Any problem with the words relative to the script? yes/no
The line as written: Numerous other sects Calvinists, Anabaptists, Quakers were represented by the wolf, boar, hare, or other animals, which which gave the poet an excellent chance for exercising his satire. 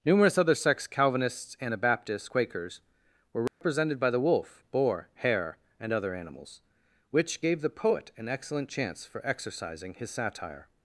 yes